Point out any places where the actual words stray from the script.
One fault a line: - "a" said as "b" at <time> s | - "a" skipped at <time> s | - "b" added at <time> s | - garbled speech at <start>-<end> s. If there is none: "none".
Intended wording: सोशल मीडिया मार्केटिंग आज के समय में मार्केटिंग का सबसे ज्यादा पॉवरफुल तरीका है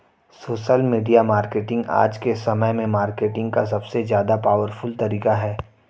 none